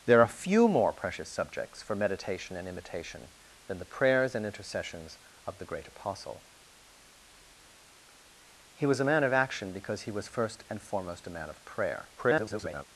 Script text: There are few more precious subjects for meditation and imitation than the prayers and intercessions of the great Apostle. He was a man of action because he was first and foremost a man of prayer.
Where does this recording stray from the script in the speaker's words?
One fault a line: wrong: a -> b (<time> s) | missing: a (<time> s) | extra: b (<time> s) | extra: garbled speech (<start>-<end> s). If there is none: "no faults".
extra: garbled speech (12.2-12.8 s)